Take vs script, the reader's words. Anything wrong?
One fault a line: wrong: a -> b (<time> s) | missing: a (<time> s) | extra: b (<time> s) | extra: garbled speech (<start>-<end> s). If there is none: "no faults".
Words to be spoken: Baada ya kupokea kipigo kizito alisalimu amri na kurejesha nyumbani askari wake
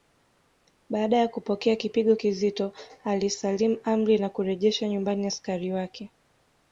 no faults